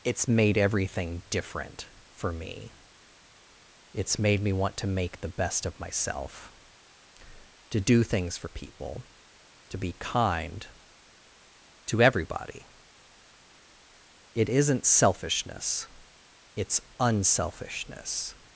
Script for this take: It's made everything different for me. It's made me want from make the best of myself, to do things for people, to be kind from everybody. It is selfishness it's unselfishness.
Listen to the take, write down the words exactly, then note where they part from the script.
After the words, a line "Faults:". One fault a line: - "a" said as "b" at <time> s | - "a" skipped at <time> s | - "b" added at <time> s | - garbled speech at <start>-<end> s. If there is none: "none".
It's made everything different for me. It's made me want to make the best of myself, to do things for people, to be kind to everybody. It isn't selfishness it's unselfishness.
Faults:
- "from" said as "to" at 4.8 s
- "from" said as "to" at 11.9 s
- "is" said as "isn't" at 14.5 s